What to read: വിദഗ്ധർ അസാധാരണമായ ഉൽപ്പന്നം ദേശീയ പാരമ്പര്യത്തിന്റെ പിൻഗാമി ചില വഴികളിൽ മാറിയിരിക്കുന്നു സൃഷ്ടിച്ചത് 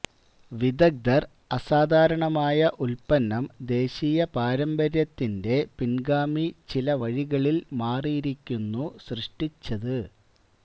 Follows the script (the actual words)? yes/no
yes